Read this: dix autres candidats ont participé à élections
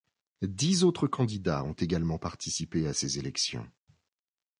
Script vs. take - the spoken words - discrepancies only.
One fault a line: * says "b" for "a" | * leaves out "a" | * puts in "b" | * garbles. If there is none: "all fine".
* puts in "également"
* puts in "ces"